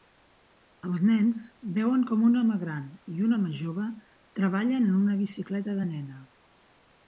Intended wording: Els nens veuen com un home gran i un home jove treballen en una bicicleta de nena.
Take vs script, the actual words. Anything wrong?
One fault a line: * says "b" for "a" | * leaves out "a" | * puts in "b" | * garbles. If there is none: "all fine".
all fine